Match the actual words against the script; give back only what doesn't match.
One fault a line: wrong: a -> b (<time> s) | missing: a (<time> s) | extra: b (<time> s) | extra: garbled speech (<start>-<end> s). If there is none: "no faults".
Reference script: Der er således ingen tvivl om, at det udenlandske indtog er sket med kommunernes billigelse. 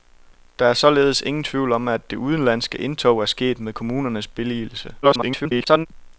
extra: garbled speech (5.0-5.9 s)